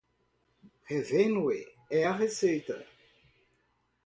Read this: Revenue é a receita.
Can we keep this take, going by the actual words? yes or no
yes